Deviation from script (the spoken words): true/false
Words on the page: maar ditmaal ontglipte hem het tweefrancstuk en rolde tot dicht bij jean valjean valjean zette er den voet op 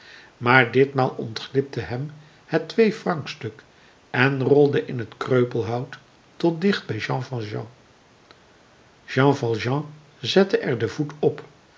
true